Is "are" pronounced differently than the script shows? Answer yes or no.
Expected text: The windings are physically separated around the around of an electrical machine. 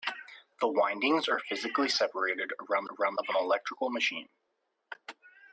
no